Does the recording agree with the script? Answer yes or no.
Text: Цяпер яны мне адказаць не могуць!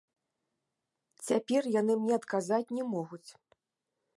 yes